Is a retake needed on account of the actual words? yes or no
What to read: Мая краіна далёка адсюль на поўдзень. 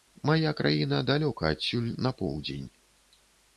no